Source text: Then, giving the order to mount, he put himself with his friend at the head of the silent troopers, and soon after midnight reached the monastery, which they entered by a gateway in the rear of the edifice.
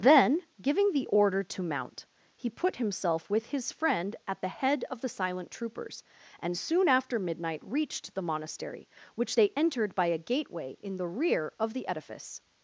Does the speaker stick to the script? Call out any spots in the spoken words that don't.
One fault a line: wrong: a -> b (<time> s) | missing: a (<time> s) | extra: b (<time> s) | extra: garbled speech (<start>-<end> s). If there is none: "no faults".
no faults